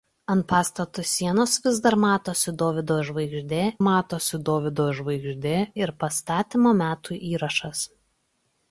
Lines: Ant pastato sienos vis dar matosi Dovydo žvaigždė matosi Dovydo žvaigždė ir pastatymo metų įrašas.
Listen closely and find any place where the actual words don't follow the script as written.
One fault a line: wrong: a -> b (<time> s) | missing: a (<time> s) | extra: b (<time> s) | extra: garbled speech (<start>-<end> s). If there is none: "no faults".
no faults